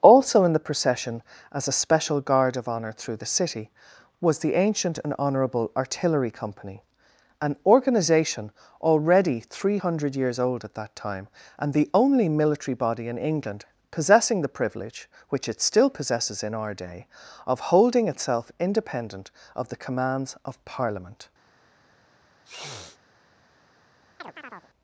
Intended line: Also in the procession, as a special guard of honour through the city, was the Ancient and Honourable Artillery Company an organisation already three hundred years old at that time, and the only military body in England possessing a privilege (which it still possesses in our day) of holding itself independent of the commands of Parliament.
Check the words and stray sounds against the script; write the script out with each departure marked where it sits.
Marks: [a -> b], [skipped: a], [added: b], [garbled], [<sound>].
Also in the procession, as a special guard of honour through the city, was the Ancient and Honourable Artillery Company an organisation already three hundred years old at that time, and the only military body in England possessing [a -> the] privilege (which it still possesses in our day) of holding itself independent of the commands of Parliament. [sniff] [chirp]